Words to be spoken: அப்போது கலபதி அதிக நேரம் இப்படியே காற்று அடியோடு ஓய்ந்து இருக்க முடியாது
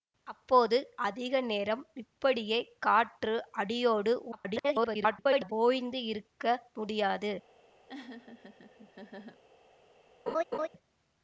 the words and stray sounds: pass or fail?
fail